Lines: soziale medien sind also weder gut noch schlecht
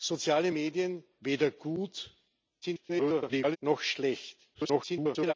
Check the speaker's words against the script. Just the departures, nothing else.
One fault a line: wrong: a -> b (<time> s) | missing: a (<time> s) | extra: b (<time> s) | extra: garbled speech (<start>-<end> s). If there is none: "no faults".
missing: sind also (1.0 s)
extra: garbled speech (2.6-3.6 s)
extra: garbled speech (4.5-5.3 s)